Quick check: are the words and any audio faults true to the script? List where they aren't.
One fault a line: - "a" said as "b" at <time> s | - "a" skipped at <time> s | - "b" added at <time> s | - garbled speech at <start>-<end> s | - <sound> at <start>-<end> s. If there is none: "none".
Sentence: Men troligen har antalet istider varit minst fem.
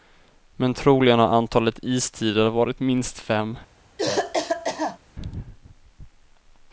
- cough at 4.0-5.0 s